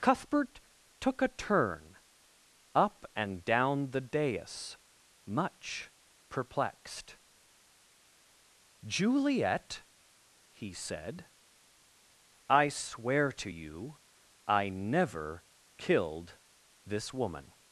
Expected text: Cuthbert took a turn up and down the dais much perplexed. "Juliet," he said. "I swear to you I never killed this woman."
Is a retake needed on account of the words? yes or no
no